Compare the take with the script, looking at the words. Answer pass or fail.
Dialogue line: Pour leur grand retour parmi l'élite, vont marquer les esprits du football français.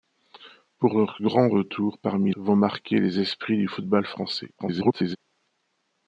fail